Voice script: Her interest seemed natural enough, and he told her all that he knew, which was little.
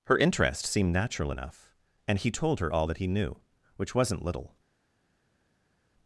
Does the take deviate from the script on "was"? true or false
true